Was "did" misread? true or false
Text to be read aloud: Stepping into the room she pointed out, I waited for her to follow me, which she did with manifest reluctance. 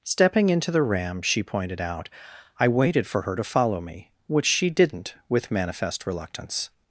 true